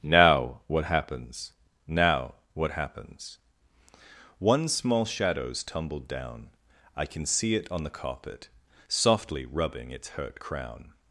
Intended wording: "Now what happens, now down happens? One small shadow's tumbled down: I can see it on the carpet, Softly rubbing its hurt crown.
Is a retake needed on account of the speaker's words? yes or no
yes